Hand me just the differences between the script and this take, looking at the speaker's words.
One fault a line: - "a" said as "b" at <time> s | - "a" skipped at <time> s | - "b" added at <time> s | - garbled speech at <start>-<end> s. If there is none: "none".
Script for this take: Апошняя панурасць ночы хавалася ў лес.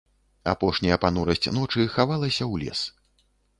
none